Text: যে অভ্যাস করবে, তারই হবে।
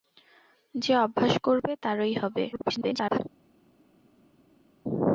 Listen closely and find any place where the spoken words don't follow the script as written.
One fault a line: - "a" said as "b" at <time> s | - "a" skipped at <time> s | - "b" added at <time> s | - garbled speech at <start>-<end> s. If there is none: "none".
- garbled speech at 2.5-3.2 s